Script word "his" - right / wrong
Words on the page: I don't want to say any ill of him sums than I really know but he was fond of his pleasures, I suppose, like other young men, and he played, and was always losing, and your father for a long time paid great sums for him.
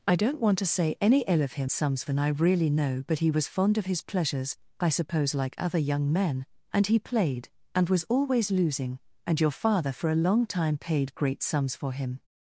right